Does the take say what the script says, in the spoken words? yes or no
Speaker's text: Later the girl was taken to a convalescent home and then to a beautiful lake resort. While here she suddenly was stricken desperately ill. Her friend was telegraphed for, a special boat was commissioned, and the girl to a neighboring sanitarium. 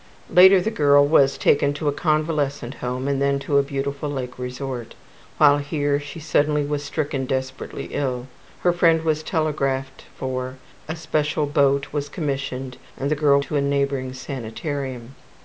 yes